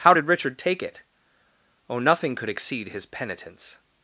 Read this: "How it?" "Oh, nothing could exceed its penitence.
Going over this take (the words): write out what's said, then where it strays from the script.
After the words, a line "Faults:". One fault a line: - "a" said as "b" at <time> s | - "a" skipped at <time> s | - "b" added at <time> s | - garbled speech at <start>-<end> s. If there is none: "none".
"How did Richard take it?" "Oh, nothing could exceed his penitence.
Faults:
- "did Richard take" added at 0.1 s
- "its" said as "his" at 2.9 s